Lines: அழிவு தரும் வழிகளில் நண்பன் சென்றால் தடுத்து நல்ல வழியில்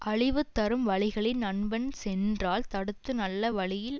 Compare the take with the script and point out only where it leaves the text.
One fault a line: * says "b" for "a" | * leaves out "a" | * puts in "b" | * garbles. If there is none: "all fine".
all fine